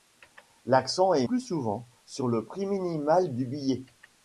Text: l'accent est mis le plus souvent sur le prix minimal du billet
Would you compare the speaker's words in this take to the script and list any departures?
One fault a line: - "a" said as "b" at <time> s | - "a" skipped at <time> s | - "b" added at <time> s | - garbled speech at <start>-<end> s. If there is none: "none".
- "mis le" skipped at 1.3 s